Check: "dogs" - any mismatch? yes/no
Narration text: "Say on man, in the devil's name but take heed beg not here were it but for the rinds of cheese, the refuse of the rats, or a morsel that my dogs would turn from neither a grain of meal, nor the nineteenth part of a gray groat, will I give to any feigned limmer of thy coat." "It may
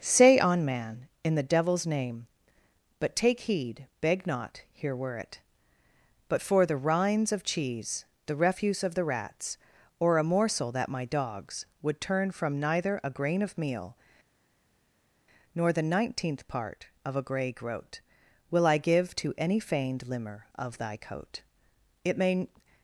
no